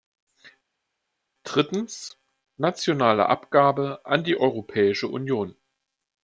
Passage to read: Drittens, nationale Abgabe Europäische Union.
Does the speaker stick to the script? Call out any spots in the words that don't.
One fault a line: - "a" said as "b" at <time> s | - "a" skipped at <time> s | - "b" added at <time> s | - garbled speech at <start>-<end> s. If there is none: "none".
- "an die" added at 4.0 s